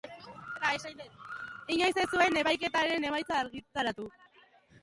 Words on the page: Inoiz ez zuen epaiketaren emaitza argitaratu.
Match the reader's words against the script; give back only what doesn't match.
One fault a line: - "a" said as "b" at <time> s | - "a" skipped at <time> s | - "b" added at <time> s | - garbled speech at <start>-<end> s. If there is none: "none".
none